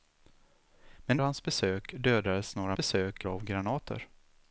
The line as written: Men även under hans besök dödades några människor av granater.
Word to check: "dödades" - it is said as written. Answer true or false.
true